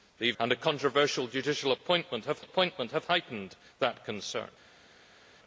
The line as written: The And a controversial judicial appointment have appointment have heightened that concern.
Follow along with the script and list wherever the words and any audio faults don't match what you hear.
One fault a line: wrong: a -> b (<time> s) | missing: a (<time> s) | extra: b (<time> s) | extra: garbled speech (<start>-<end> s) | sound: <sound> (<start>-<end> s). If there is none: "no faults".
no faults